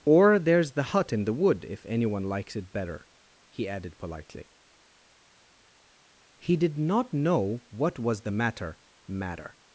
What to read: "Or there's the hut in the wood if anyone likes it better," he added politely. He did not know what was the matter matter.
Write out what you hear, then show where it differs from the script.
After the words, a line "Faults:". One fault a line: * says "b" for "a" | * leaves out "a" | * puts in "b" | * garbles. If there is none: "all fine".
"Or there's the hut in the wood if anyone likes it better," he added politely. He did not know what was the matter matter.
Faults:
all fine